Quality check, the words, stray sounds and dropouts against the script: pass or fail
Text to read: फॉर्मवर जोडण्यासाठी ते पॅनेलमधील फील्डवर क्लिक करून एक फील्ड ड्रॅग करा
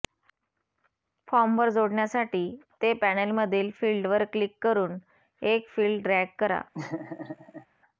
fail